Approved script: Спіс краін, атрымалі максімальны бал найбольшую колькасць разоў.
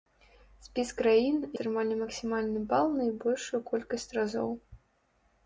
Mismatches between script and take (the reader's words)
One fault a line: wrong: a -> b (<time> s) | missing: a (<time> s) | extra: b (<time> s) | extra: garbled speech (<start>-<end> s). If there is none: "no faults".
no faults